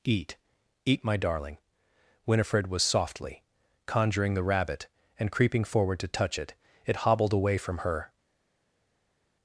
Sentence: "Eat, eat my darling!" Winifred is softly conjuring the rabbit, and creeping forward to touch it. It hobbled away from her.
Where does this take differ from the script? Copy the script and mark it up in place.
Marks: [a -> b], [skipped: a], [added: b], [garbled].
"Eat, eat my darling!" Winifred [is -> was] softly conjuring the rabbit, and creeping forward to touch it. It hobbled away from her.